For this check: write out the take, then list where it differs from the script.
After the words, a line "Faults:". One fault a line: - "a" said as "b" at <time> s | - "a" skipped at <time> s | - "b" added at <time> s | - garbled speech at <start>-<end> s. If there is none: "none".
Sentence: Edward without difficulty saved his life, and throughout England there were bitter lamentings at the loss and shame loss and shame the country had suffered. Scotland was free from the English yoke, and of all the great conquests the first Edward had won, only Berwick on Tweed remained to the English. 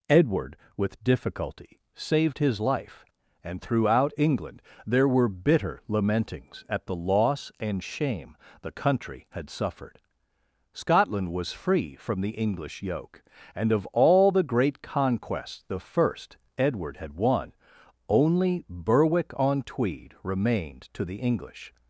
Edward with difficulty saved his life, and throughout England there were bitter lamentings at the loss and shame the country had suffered. Scotland was free from the English yoke, and of all the great conquests the first Edward had won, only Berwick on Tweed remained to the English.
Faults:
- "without" said as "with" at 0.8 s
- "loss and shame" skipped at 8.4 s